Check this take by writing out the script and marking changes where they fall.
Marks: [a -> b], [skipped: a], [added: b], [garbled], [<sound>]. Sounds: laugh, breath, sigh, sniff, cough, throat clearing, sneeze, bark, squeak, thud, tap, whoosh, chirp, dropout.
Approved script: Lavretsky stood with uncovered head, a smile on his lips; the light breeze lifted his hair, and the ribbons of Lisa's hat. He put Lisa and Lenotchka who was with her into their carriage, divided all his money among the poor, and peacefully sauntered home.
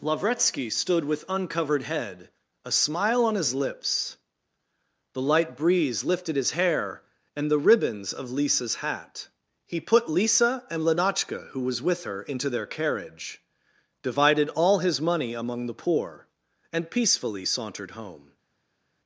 Lavretsky stood with uncovered head, a smile on his lips; the light breeze lifted his hair, and the ribbons of Lisa's hat. He put Lisa and Lenotchka who was with her into their carriage, divided all his money among the poor, and peacefully sauntered home.